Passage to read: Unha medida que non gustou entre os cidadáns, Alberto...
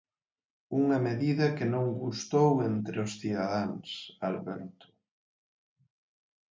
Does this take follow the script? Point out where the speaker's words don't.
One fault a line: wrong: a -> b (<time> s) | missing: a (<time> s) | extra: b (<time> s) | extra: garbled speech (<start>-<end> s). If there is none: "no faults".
no faults